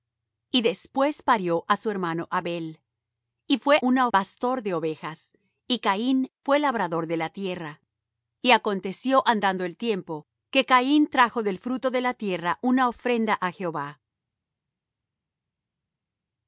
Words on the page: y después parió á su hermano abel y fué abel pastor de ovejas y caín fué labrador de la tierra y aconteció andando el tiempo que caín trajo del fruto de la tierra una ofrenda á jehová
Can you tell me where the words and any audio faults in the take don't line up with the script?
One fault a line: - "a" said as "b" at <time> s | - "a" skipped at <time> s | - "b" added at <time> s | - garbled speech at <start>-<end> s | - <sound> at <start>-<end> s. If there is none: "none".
- "abel" said as "una" at 3.8 s